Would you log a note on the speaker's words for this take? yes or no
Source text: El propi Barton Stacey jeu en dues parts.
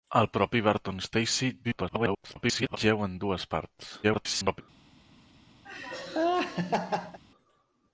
yes